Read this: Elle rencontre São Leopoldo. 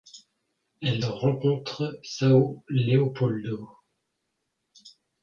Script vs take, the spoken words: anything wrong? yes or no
no